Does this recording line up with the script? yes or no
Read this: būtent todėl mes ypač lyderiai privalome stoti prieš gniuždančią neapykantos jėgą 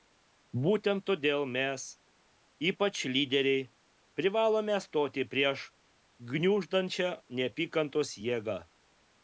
yes